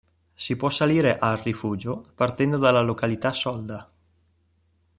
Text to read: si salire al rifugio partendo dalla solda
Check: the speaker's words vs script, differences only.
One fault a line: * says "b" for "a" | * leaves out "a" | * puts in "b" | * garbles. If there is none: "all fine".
* puts in "può"
* puts in "località"